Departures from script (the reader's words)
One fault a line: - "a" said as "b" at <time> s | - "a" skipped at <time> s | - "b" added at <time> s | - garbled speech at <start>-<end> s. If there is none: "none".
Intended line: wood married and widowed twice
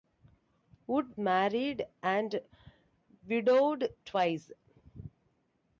none